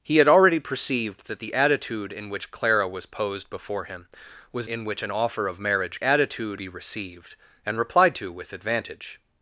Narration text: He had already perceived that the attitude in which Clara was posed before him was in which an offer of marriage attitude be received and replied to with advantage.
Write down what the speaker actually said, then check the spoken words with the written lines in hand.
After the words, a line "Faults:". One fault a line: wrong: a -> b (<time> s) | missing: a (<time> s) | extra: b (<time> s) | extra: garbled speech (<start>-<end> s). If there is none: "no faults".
He had already perceived that the attitude in which Clara was posed before him was in which an offer of marriage attitude be received and replied to with advantage.
Faults:
no faults